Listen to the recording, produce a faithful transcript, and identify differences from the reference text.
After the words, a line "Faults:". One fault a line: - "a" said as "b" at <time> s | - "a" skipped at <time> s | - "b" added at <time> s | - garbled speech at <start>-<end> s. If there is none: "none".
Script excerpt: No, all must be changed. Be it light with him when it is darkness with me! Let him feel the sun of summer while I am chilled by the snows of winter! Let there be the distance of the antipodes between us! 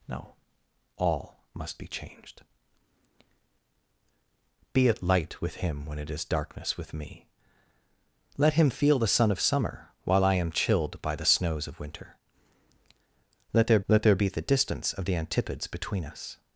No, all must be changed. Be it light with him when it is darkness with me! Let him feel the sun of summer while I am chilled by the snows of winter! Let there let there be the distance of the antipodes between us!
Faults:
- "let there" added at 13.9 s